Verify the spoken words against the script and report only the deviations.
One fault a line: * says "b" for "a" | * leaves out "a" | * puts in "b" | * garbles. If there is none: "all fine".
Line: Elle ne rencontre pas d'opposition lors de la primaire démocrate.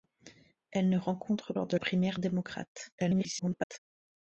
* leaves out "pas d'opposition"
* leaves out "la"
* garbles